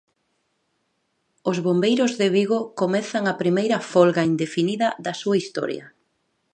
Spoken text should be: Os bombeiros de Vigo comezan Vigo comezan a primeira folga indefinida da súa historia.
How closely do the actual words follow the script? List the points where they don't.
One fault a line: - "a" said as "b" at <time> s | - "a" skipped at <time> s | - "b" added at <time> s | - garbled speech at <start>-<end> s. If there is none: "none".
- "Vigo comezan" skipped at 3.2 s